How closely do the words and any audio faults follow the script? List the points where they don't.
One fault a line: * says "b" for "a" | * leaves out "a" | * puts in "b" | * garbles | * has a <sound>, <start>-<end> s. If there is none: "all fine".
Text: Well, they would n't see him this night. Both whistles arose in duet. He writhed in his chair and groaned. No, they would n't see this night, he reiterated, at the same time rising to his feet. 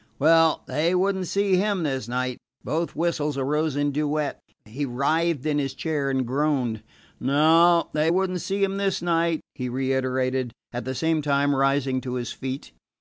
* puts in "him"